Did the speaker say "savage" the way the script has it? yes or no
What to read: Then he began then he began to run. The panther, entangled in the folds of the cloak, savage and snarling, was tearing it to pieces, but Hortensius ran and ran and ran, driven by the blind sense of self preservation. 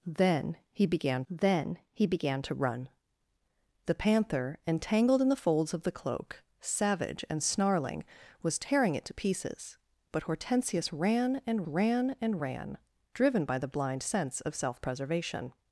yes